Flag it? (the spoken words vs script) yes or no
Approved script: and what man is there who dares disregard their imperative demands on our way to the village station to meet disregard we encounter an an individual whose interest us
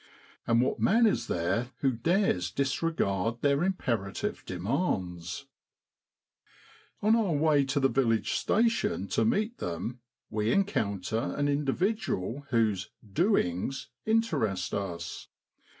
yes